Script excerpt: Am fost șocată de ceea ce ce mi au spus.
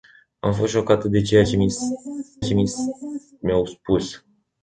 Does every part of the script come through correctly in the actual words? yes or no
yes